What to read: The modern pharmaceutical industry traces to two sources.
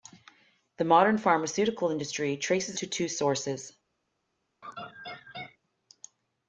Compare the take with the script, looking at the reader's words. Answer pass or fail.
pass